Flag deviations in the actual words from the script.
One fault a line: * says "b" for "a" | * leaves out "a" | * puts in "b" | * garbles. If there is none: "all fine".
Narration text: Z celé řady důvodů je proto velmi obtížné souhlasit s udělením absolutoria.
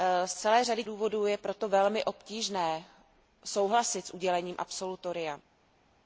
all fine